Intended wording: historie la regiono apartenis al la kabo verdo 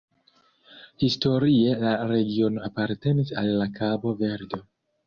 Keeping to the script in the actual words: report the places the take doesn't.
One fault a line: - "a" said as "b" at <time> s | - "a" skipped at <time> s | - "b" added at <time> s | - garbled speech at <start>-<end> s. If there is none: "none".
none